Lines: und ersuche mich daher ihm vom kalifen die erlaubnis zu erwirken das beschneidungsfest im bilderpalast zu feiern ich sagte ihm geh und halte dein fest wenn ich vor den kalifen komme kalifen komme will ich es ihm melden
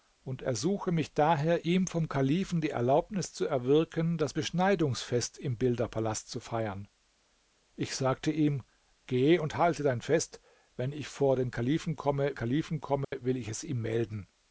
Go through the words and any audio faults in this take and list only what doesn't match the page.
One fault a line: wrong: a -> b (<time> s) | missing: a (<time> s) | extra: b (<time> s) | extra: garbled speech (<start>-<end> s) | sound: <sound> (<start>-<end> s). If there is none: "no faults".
sound: dropout (13.0-13.1 s)